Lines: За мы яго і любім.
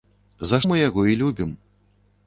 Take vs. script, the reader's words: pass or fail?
pass